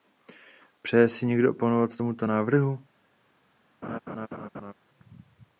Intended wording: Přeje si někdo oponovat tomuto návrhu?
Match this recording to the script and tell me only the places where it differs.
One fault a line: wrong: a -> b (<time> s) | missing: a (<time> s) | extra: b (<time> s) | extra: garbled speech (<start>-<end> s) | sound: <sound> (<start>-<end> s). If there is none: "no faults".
sound: laugh (3.8-4.7 s)